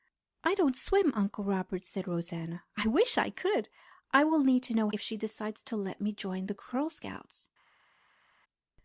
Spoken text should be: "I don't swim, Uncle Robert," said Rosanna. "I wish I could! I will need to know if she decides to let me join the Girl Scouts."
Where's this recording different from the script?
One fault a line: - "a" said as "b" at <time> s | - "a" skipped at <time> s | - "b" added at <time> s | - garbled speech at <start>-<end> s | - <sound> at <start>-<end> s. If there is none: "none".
none